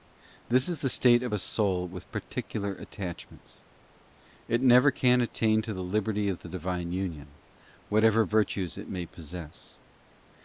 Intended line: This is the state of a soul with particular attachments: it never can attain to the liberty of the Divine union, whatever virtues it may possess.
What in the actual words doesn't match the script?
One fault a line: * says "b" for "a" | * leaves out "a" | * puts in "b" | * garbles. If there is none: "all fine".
all fine